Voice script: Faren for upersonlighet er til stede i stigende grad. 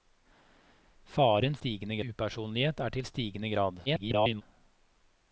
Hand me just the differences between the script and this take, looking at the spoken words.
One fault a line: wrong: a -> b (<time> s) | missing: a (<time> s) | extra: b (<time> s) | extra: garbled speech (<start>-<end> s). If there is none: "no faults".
wrong: for -> stigende (1.6 s)
missing: stede (3.0 s)
extra: garbled speech (3.9-4.4 s)